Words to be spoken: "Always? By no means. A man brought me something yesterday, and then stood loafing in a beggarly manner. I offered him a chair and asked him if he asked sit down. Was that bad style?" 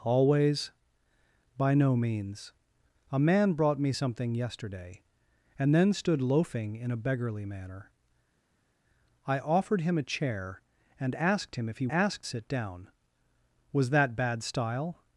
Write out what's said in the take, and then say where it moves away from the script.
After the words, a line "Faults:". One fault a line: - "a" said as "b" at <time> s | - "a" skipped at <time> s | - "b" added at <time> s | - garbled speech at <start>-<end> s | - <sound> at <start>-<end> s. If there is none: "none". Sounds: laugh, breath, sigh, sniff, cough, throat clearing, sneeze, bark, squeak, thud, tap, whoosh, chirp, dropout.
"Always? By no means. A man brought me something yesterday, and then stood loafing in a beggarly manner. I offered him a chair and asked him if he asked sit down. Was that bad style?"
Faults:
none